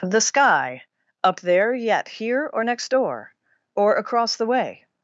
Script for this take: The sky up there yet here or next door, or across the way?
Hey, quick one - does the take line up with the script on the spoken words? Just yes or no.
yes